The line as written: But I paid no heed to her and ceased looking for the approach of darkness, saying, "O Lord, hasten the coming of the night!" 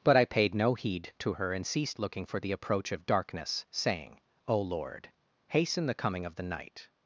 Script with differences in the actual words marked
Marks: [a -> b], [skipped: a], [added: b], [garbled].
But I paid no heed to her and ceased looking for the approach of darkness, saying, "O Lord, hasten the coming of the night!"